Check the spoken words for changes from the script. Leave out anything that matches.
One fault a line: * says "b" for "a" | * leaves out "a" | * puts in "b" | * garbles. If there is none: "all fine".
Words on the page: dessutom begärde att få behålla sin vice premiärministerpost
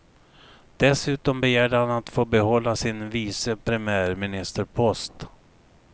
* puts in "han"